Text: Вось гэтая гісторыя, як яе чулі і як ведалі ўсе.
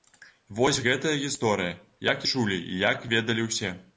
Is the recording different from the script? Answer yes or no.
yes